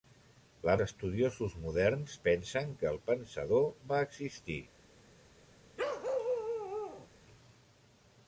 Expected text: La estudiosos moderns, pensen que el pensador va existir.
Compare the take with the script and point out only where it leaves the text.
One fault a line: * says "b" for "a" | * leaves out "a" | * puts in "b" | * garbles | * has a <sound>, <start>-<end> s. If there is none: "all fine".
* has a bark, 5.8-7.1 s